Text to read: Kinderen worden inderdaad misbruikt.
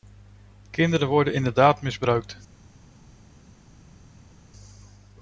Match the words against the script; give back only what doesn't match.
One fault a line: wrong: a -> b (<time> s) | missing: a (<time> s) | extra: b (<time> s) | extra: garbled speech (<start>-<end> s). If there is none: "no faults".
no faults